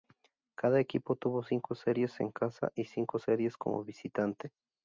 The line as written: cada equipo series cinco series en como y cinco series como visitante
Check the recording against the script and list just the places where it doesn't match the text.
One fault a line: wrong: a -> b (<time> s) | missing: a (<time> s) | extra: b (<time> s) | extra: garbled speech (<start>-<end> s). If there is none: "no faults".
wrong: series -> tuvo (1.1 s)
wrong: como -> casa (2.3 s)